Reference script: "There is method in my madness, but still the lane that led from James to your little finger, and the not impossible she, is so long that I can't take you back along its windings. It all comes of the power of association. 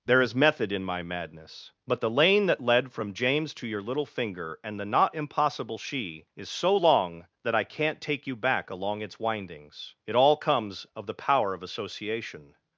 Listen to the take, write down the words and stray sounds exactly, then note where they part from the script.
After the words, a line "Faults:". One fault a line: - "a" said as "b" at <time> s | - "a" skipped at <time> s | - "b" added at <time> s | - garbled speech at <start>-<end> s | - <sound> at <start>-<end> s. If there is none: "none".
"There is method in my madness, but the lane that led from James to your little finger, and the not impossible she, is so long that I can't take you back along its windings. It all comes of the power of association.
Faults:
- "still" skipped at 2.0 s